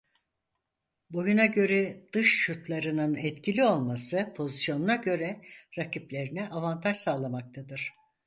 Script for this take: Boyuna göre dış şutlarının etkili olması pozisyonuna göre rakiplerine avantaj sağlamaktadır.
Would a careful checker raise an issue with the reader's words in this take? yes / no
no